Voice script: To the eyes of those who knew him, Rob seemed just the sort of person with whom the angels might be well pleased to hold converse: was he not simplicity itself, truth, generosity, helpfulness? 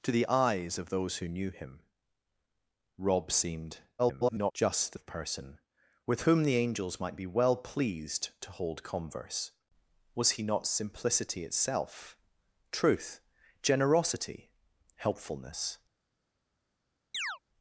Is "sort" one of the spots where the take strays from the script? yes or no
yes